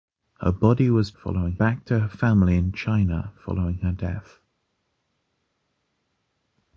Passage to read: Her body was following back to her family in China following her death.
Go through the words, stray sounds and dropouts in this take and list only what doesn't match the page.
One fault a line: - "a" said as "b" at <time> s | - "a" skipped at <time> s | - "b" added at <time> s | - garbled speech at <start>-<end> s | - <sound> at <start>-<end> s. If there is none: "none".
none